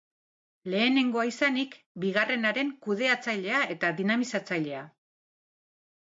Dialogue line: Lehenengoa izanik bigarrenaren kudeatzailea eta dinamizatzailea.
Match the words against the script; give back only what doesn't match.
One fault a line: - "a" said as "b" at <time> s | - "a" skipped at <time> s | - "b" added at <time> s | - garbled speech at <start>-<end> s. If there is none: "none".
none